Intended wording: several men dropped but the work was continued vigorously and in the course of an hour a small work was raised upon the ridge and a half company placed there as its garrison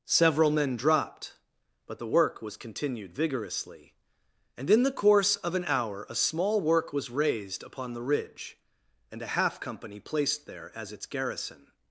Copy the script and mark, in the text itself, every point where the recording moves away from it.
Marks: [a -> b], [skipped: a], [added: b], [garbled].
several men dropped but the work was continued vigorously and in the course of an hour a small work was raised upon the ridge and a half company placed there as its garrison